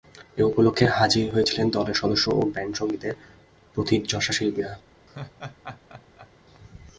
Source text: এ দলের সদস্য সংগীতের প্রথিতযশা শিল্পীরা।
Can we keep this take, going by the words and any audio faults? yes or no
no